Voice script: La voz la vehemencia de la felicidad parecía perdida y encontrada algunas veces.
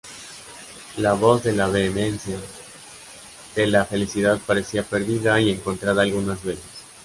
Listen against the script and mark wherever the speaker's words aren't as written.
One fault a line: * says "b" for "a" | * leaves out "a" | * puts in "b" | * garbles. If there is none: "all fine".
* puts in "de"